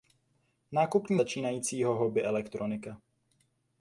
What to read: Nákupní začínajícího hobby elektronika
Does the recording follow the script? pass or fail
pass